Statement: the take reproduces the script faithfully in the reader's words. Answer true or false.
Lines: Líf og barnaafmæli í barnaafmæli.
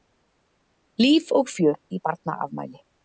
false